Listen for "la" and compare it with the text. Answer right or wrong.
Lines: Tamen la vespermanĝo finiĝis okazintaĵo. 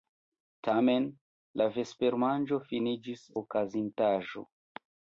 right